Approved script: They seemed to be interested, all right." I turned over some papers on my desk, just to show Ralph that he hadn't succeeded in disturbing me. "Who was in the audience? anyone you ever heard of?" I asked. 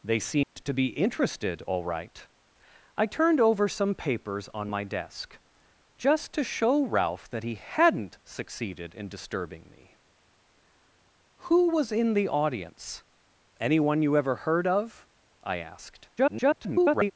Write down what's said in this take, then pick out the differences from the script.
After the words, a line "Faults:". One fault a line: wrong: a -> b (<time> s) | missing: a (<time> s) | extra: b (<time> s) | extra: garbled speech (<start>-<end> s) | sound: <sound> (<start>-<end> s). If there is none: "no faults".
They seemed to be interested, all right." I turned over some papers on my desk, just to show Ralph that he hadn't succeeded in disturbing me. "Who was in the audience? anyone you ever heard of?" I asked. [garbled]
Faults:
sound: dropout (0.4-0.6 s)
extra: garbled speech (16.2-17.1 s)